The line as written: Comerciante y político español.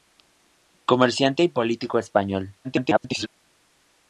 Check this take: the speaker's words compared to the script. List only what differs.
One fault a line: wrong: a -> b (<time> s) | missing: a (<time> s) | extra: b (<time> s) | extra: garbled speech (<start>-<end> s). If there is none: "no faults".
extra: garbled speech (2.6-3.3 s)